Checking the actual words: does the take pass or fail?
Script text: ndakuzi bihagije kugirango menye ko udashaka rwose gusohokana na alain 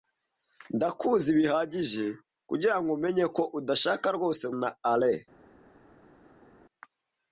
fail